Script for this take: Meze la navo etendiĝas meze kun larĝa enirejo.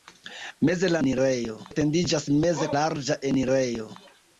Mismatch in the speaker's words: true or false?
true